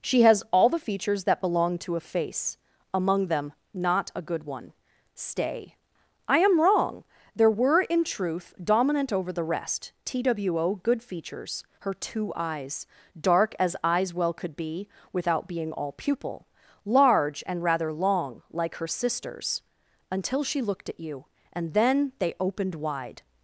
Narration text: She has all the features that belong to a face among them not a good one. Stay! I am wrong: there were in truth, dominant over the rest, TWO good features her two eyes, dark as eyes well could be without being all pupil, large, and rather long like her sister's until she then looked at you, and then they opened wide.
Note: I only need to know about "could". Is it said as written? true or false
true